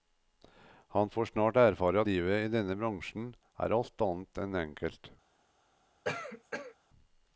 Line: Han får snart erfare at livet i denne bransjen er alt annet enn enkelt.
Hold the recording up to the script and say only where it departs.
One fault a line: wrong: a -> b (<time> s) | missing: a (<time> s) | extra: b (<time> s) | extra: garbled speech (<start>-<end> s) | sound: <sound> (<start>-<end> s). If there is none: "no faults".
missing: at (2.0 s)
sound: cough (6.0-6.7 s)